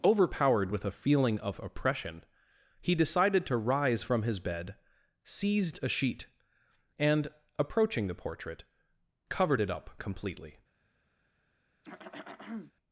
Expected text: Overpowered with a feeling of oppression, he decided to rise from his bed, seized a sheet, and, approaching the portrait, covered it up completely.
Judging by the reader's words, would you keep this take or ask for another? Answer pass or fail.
pass